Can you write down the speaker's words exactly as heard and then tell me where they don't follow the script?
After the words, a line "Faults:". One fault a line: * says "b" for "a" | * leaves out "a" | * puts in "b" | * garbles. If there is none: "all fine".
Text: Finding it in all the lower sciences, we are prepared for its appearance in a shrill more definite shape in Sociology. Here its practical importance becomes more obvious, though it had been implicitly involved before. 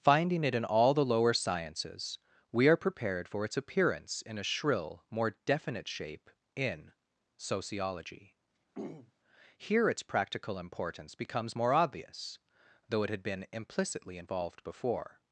Finding it in all the lower sciences, we are prepared for its appearance in a shrill more definite shape in Sociology. Here its practical importance becomes more obvious, though it had been implicitly involved before.
Faults:
all fine